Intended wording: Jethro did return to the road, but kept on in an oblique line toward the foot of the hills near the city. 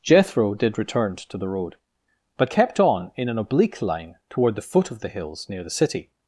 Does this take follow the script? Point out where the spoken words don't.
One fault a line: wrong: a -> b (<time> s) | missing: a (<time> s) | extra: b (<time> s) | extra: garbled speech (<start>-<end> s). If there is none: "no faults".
no faults